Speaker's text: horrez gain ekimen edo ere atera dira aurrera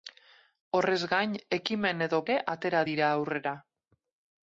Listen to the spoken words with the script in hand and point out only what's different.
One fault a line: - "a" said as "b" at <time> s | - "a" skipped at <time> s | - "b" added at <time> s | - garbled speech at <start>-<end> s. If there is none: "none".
none